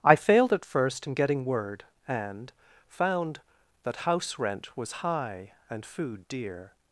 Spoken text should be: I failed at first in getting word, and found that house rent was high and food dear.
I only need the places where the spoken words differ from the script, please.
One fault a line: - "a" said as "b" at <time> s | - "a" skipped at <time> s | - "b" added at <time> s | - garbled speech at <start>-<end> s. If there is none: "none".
none